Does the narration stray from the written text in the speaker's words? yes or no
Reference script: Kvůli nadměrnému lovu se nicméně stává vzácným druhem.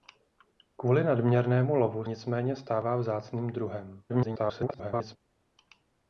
yes